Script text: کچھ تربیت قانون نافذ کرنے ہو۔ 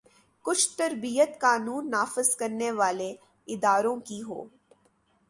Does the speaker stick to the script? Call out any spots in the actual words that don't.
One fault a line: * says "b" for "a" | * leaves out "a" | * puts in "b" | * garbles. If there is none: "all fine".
* puts in "والے اداروں کی"